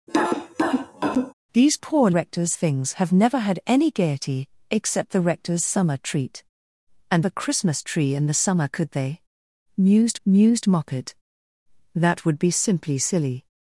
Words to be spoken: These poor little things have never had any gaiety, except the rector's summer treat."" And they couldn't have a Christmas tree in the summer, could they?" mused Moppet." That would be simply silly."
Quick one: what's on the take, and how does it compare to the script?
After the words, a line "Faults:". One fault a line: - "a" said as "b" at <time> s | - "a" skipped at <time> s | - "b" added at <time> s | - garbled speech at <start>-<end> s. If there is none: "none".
These poor rector's things have never had any gaiety, except the rector's summer treat."" And a Christmas tree in the summer, could they?" mused mused Moppet." That would be simply silly."
Faults:
- "little" said as "rector's" at 2.1 s
- "they couldn't have" skipped at 7.2 s
- "mused" added at 10.3 s